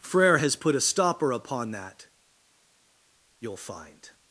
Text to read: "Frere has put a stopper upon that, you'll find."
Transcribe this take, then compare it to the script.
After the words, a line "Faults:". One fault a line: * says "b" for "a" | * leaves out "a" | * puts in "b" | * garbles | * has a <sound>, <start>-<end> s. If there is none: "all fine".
"Frere has put a stopper upon that, you'll find."
Faults:
all fine